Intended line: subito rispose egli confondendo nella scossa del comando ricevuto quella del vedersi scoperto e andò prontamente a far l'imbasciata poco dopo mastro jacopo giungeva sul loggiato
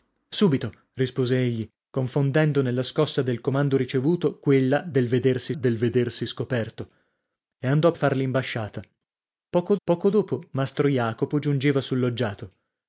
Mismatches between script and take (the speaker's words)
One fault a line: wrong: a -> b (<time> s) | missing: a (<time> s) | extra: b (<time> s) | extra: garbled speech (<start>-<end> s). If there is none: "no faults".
extra: del vedersi (5.5 s)
missing: prontamente (7.9 s)
extra: poco (9.8 s)